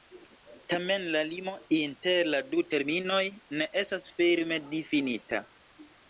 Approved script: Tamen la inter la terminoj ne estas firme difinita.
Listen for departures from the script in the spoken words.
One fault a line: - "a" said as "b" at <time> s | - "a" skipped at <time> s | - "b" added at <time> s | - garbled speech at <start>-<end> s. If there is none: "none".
- "limo" added at 1.3 s
- "du" added at 2.5 s